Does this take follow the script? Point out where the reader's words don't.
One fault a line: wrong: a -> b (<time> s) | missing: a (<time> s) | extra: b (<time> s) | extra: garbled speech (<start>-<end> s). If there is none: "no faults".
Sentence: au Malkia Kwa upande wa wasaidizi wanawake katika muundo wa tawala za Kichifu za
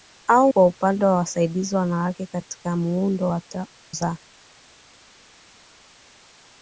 missing: Malkia (0.5 s)
missing: tawala za Kichifu (3.4 s)